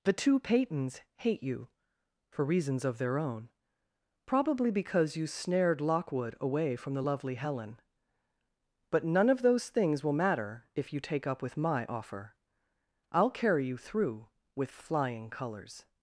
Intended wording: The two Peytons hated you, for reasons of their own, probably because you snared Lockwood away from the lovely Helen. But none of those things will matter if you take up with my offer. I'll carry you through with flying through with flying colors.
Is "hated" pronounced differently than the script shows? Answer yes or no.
yes